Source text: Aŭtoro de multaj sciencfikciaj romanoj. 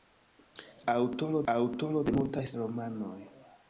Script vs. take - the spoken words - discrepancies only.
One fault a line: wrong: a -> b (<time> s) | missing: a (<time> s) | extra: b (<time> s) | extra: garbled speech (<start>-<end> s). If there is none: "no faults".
extra: aŭtoro (1.5 s)
missing: sciencfikciaj (2.5 s)